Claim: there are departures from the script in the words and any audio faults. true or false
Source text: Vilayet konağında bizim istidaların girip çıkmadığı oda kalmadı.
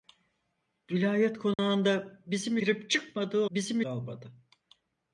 true